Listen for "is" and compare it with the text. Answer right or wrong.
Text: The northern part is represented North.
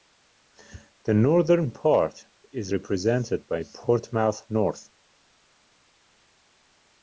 right